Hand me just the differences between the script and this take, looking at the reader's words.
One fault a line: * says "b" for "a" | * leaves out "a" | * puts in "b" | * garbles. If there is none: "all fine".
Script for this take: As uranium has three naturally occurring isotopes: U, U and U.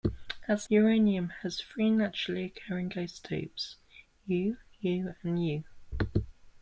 all fine